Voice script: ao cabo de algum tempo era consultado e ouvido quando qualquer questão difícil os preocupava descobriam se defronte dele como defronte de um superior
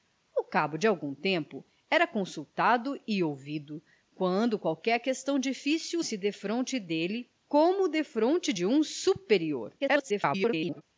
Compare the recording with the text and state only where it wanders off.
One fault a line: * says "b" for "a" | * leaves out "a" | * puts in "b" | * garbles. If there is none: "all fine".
* leaves out "os preocupava descobriam"
* garbles